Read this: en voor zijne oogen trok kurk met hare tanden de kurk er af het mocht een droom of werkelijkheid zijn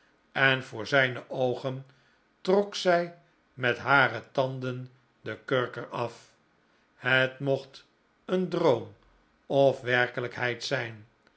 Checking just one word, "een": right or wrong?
right